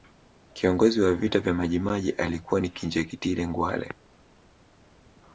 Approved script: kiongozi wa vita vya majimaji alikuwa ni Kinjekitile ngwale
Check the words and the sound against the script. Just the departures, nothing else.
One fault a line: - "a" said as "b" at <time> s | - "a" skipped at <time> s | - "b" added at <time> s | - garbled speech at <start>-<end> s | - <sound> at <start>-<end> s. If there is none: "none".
none